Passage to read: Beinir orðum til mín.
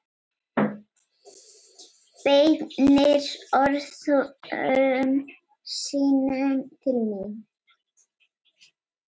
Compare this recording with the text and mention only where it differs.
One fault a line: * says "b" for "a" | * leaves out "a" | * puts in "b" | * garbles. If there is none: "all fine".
* puts in "sínum"